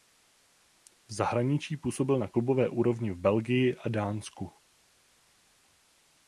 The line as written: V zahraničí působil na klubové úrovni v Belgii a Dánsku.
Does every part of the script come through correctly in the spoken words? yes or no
yes